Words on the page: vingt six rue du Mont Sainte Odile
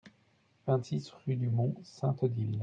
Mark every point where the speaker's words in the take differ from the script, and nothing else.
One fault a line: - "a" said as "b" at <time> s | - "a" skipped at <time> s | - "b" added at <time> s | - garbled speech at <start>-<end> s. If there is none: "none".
none